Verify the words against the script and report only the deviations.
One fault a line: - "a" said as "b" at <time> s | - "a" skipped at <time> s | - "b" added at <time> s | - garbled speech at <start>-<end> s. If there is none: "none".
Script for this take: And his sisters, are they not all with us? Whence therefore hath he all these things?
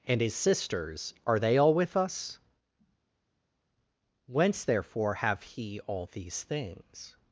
- "not" skipped at 1.6 s
- "hath" said as "have" at 5.1 s